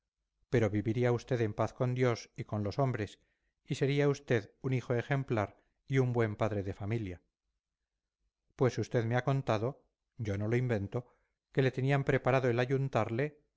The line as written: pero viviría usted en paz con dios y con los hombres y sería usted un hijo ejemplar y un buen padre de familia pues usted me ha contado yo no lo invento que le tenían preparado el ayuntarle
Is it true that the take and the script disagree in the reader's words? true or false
false